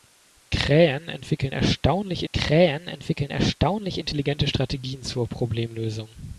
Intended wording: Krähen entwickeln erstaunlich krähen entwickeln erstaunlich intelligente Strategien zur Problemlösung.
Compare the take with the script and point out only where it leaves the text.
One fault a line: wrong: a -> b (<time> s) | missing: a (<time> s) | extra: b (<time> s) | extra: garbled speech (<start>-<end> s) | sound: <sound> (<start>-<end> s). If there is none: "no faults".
no faults